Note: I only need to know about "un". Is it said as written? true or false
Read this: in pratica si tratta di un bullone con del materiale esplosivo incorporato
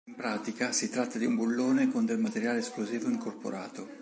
true